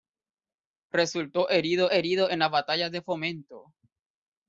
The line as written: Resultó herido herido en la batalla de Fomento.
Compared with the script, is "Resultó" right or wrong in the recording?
right